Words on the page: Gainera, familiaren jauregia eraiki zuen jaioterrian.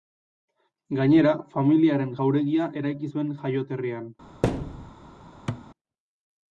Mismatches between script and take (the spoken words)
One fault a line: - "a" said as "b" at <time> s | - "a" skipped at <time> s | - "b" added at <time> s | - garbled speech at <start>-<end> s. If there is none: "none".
none